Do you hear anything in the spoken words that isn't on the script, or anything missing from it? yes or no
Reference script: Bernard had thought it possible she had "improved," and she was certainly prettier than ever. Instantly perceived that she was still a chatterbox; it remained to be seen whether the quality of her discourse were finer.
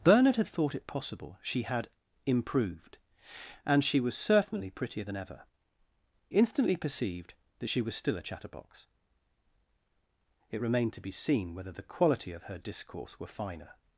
no